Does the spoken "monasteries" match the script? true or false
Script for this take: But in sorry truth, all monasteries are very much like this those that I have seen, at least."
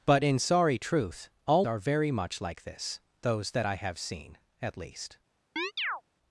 false